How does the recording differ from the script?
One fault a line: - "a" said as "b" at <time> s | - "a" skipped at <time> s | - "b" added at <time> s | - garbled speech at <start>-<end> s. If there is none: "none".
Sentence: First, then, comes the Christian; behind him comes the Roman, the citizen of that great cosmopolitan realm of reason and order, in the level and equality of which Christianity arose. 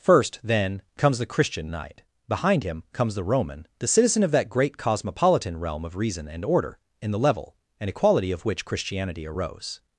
- "knight" added at 1.7 s